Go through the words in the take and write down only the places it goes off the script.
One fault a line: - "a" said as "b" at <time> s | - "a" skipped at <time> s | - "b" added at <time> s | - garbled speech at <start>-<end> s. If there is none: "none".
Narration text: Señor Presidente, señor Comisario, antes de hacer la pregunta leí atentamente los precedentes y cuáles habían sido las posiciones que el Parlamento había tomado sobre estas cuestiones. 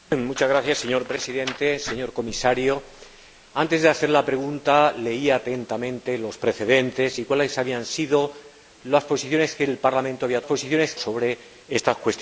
- "tomado" said as "posiciones" at 10.4 s